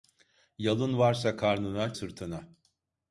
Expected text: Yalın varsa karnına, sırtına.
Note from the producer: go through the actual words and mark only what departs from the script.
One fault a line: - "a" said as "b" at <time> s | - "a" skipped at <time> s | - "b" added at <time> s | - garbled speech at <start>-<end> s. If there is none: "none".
none